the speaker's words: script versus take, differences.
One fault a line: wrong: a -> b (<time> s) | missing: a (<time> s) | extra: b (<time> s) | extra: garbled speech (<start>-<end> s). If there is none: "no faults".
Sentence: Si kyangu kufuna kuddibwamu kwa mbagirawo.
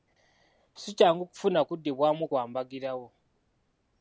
no faults